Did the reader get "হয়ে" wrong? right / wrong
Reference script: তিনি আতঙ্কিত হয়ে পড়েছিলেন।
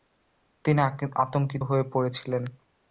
right